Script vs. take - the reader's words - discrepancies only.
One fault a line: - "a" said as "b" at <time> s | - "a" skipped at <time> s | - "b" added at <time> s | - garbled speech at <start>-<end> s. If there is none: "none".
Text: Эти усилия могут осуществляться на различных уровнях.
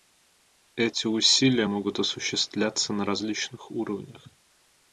none